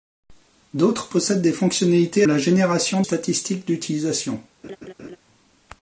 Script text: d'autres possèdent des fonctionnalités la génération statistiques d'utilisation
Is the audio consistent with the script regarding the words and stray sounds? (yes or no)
no